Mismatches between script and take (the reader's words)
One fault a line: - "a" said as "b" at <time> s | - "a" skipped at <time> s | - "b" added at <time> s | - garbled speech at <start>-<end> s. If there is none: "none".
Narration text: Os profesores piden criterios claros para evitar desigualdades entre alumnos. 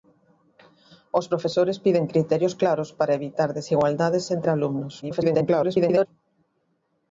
- garbled speech at 5.0-6.1 s